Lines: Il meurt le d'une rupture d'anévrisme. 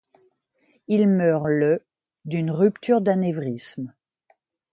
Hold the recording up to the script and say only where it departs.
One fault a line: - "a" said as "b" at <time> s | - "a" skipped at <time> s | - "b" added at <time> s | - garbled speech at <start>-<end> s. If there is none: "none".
none